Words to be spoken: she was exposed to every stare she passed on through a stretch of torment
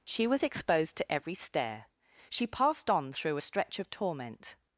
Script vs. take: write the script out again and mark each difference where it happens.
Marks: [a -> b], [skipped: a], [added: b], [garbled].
she was exposed to every stare she passed on through a stretch of torment